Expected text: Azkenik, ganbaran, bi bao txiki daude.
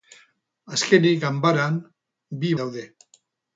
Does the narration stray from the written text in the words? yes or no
yes